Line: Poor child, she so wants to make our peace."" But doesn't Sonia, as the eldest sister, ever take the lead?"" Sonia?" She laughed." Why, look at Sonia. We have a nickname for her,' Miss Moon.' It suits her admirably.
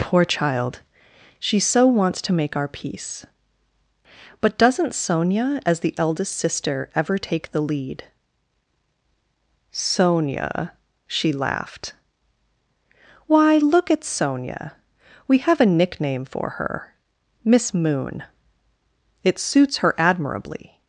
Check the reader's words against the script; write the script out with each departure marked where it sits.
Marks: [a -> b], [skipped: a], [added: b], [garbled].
Poor child, she so wants to make our peace."" But doesn't Sonia, as the eldest sister, ever take the lead?"" Sonia?" She laughed." Why, look at Sonia. We have a nickname for her,' Miss Moon.' It suits her admirably.